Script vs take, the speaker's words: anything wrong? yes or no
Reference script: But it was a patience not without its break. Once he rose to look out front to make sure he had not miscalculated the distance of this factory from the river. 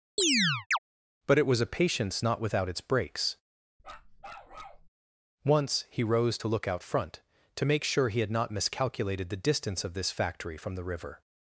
yes